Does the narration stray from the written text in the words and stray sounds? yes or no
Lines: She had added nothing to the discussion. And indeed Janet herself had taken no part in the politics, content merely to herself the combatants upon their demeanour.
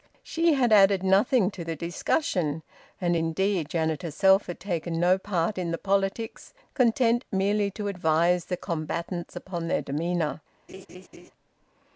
yes